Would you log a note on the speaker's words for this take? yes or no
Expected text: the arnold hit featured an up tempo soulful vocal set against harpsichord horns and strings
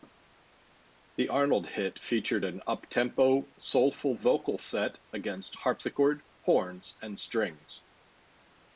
no